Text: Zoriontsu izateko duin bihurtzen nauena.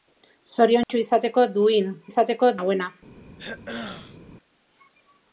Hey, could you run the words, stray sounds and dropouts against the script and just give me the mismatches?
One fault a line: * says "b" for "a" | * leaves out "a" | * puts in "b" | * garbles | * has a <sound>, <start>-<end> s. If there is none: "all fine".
* has a dropout, 0.8-0.9 s
* says "izateko" for "bihurtzen"
* has a throat clearing, 3.4-4.2 s